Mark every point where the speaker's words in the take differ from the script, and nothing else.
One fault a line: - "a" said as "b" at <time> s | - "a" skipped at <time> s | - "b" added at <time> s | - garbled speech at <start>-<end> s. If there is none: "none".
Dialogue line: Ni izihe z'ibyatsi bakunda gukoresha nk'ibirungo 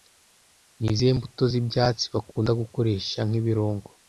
- "mbuto" added at 1.2 s